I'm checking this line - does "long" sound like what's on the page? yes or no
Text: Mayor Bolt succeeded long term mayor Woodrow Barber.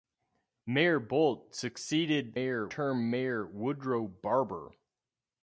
no